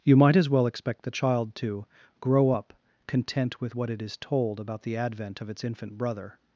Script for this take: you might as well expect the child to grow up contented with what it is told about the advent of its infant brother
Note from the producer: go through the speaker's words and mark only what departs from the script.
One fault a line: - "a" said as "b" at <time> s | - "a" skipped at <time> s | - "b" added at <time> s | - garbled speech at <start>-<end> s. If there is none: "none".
- "contented" said as "content" at 3.1 s